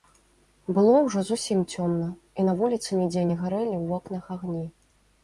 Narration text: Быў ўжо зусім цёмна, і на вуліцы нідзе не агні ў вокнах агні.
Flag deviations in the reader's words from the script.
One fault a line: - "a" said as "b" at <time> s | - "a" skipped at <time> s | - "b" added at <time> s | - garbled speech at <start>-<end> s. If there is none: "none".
- "Быў" said as "Было" at 0.8 s
- "агні" said as "гарэлі" at 3.4 s